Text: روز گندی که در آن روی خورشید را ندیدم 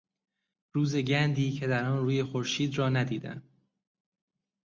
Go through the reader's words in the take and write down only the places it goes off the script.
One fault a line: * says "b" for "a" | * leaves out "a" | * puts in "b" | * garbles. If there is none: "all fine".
all fine